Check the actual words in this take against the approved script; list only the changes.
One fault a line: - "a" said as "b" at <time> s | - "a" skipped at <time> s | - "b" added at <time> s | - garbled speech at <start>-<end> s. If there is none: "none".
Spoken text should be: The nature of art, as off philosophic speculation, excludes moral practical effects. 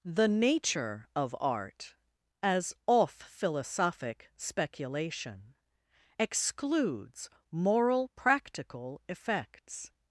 none